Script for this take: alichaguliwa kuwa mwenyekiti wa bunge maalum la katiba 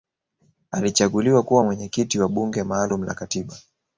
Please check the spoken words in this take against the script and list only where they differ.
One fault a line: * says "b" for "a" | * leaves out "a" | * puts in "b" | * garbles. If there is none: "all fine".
all fine